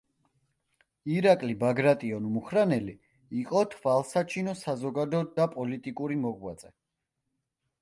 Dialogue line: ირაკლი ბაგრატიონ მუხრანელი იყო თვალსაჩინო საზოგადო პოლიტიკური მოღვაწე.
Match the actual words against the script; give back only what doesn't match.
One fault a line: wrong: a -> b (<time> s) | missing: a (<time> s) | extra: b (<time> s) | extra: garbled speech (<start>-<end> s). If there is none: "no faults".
extra: და (5.4 s)